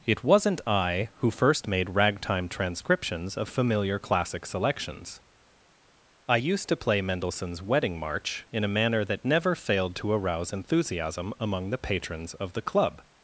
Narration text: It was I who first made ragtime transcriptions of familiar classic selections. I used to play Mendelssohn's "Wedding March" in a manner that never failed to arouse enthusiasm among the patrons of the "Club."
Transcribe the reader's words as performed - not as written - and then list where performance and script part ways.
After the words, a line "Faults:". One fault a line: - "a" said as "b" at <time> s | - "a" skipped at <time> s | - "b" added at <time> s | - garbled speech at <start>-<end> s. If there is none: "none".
It wasn't I who first made ragtime transcriptions of familiar classic selections. I used to play Mendelssohn's "Wedding March" in a manner that never failed to arouse enthusiasm among the patrons of the "Club."
Faults:
- "was" said as "wasn't" at 0.2 s